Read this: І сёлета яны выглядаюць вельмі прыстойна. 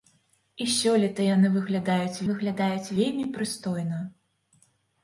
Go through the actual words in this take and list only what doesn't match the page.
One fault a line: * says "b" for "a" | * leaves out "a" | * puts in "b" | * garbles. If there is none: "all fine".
* puts in "выглядаюць"